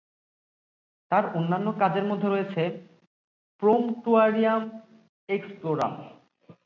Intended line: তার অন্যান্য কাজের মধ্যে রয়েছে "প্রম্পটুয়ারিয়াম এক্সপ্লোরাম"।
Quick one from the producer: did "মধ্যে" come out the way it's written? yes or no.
yes